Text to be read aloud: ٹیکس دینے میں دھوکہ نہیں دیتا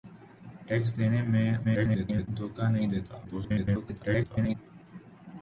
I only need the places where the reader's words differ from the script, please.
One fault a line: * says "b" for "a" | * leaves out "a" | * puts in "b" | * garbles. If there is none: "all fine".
* garbles
* garbles